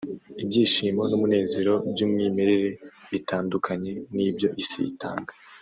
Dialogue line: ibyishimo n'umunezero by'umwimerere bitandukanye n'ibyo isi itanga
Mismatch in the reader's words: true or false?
false